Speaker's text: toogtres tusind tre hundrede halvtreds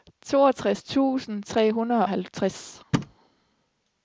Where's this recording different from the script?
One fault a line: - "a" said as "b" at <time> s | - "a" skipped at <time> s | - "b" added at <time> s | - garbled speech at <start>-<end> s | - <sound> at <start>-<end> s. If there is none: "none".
- thud at 2.9-3.2 s